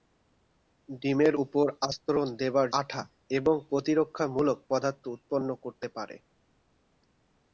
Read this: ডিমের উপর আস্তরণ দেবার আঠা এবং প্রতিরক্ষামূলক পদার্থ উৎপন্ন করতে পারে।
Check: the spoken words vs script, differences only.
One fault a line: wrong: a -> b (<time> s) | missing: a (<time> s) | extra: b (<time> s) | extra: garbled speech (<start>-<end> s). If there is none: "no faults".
no faults